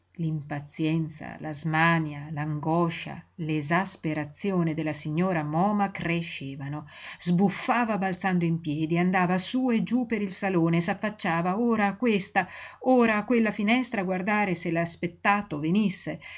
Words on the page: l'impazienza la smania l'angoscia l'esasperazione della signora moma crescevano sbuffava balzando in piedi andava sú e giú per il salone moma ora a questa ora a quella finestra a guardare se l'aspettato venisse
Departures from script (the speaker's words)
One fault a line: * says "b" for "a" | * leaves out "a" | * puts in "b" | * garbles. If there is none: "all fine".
* says "s'affacciava" for "moma"